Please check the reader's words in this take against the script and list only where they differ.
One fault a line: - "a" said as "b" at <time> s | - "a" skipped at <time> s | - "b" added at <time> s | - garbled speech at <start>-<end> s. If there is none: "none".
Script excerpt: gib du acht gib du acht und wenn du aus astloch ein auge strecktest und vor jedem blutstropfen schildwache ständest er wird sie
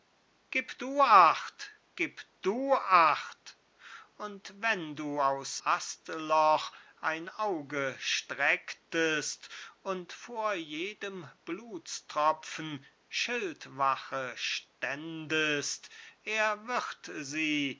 none